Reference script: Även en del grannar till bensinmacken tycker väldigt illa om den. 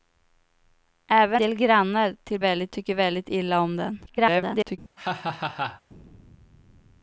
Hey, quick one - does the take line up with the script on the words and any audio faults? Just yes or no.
no